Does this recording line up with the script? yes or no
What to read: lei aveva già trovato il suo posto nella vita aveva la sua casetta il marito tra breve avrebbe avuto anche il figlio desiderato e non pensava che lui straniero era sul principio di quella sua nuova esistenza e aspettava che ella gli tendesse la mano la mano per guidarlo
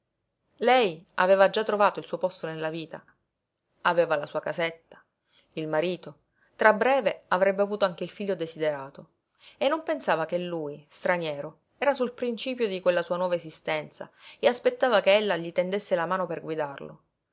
no